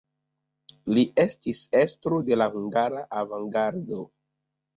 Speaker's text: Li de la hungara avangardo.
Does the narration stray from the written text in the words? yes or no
yes